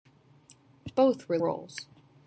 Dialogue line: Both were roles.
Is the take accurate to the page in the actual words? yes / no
yes